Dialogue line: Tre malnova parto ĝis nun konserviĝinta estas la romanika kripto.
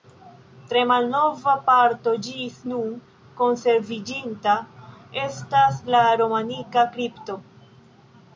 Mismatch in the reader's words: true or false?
false